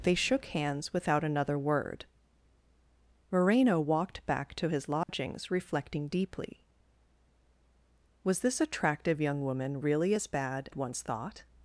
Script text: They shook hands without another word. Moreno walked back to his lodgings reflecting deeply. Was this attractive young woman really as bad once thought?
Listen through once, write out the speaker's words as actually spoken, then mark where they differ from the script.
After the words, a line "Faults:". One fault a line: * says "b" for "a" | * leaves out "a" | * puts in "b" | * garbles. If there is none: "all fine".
They shook hands without another word. Moreno walked back to his lodgings reflecting deeply. Was this attractive young woman really as bad once thought?
Faults:
all fine